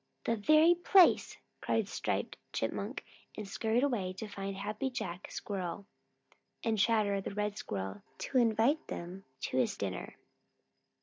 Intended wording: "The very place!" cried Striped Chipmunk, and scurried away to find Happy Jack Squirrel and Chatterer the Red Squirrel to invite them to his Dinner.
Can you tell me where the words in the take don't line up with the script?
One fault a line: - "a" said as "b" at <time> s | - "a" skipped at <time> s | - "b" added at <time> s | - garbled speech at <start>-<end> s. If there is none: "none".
none